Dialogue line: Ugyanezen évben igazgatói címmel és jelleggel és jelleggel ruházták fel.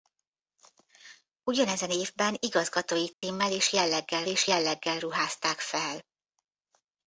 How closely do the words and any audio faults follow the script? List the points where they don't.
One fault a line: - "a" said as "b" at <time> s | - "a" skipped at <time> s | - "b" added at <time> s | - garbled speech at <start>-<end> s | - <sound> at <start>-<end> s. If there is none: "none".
- dropout at 3.1-3.2 s